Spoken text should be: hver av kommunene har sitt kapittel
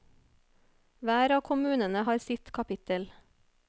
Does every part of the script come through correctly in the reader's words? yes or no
yes